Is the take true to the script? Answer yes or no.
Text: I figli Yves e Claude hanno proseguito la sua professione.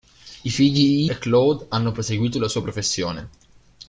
no